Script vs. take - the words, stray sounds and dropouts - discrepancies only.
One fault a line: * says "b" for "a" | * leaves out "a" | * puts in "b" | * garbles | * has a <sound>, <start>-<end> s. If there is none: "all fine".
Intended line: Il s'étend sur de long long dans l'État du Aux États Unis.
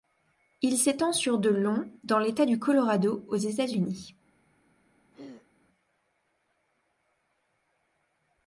* leaves out "long"
* puts in "Colorado"
* has a throat clearing, 5.1-5.5 s